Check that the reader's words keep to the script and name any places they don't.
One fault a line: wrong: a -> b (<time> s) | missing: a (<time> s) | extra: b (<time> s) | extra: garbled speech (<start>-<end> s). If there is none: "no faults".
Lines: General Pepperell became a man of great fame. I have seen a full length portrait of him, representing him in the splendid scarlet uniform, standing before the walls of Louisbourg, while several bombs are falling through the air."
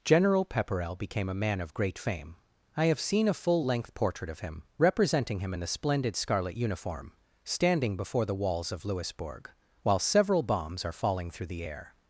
no faults